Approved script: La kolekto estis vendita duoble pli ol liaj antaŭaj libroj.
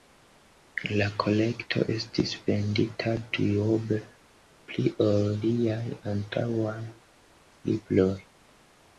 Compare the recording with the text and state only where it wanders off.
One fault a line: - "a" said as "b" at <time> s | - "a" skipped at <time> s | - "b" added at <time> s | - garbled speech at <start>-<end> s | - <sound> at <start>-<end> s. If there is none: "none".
none